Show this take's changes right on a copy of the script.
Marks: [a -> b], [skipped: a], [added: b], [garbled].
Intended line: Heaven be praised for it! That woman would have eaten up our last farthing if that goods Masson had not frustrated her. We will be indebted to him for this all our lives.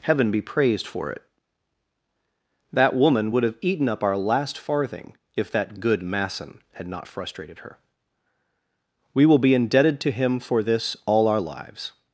Heaven be praised for it! That woman would have eaten up our last farthing if that [goods -> good] Masson had not frustrated her. We will be indebted to him for this all our lives.